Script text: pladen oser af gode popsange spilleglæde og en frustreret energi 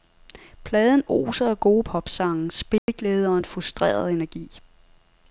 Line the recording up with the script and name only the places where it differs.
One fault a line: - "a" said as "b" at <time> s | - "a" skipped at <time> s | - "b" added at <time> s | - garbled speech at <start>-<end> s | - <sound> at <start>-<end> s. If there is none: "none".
- dropout at 2.8-2.9 s